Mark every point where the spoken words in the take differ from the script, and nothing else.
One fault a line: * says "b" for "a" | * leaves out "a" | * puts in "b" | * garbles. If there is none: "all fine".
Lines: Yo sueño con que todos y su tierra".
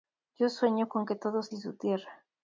all fine